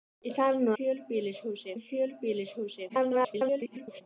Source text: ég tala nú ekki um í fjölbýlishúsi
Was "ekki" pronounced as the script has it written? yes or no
no